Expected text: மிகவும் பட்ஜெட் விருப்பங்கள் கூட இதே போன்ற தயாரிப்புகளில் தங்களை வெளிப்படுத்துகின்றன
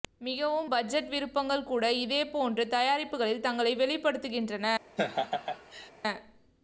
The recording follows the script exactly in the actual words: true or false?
true